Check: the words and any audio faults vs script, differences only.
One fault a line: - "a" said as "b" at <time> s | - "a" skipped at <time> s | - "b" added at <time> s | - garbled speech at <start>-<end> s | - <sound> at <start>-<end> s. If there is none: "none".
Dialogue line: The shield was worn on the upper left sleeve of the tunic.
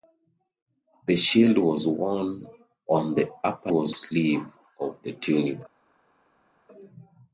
- "left" said as "was" at 3.7 s